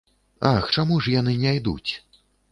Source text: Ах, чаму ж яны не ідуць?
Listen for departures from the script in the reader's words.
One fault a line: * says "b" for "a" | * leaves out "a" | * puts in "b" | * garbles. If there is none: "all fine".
all fine